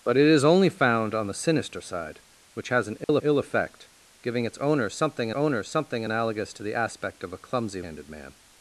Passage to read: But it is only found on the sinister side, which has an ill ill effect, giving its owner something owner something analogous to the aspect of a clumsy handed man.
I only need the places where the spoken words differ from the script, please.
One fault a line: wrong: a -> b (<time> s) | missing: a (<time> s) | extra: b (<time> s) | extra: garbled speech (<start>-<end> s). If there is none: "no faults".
no faults